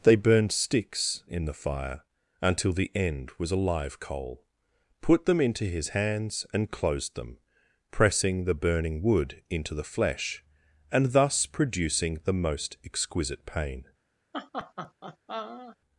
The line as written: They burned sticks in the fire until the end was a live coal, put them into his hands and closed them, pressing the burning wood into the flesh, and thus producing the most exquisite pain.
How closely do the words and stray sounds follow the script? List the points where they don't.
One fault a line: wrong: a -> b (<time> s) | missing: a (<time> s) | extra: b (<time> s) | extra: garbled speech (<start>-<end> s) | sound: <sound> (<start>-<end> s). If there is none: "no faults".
sound: laugh (14.3-15.8 s)